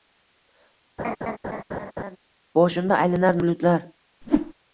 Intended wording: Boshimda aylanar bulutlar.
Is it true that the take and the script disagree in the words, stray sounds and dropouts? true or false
true